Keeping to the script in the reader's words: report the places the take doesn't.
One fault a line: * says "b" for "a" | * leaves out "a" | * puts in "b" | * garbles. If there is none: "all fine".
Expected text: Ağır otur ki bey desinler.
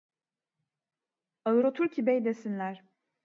all fine